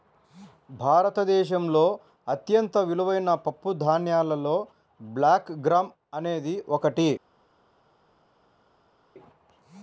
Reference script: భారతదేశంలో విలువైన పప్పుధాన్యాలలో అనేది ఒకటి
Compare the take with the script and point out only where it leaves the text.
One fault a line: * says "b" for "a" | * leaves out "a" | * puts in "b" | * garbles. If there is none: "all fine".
* puts in "అత్యంత"
* puts in "బ్లాక్ గ్రామ్"